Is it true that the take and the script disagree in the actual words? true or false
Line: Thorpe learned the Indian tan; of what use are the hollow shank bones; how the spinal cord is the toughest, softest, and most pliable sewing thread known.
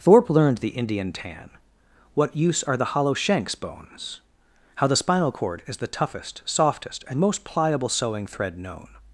true